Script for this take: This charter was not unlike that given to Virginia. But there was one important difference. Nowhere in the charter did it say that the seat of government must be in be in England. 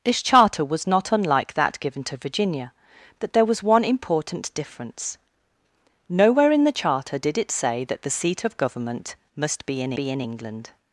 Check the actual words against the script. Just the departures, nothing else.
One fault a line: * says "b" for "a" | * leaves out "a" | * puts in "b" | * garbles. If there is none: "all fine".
all fine